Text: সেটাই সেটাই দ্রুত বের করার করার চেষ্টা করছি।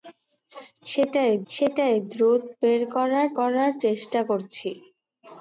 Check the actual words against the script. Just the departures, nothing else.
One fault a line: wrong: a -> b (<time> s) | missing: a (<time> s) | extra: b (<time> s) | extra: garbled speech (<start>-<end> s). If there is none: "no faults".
no faults